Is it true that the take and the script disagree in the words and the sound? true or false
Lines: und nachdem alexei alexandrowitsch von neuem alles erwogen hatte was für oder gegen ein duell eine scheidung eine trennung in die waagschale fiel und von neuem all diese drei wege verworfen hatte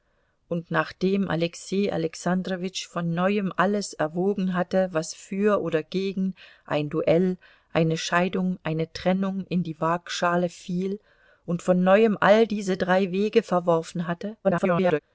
true